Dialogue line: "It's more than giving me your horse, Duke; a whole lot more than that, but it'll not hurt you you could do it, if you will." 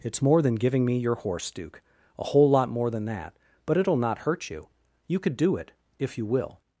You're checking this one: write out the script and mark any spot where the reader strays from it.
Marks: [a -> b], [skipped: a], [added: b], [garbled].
"It's more than giving me your horse, Duke; a whole lot more than that, but it'll not hurt you you could do it, if you will."